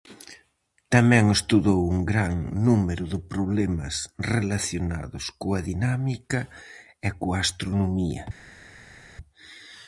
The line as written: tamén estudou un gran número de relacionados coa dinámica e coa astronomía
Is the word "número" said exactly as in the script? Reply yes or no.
yes